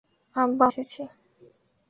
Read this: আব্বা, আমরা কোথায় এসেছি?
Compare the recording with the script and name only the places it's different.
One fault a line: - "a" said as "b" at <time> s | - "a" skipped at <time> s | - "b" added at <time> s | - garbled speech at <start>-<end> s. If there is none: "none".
- "আমরা কোথায়" skipped at 0.7 s